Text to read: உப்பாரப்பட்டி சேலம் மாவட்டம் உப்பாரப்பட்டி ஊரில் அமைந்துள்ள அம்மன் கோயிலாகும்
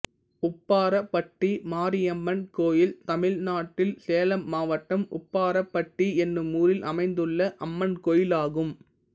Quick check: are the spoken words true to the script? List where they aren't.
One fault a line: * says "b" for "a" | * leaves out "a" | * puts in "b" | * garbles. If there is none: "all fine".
* puts in "மாரியம்மன் கோயில் தமிழ்நாட்டில்"
* puts in "என்னும்"